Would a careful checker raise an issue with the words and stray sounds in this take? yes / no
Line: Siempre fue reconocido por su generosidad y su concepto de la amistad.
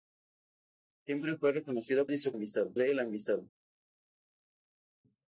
yes